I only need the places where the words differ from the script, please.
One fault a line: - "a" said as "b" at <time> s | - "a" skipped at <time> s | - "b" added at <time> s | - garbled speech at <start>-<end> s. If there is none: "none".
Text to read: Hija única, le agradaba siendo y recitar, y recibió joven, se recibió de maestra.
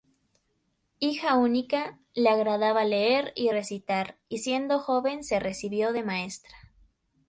- "siendo" said as "leer" at 2.9 s
- "recibió" said as "siendo" at 4.4 s